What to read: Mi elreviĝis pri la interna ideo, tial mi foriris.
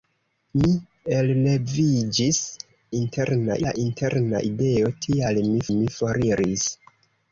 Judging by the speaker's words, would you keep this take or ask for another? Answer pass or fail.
fail